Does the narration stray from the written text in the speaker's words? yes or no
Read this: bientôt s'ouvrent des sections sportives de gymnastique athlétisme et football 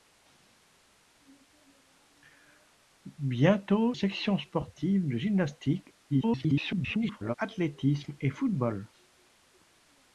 yes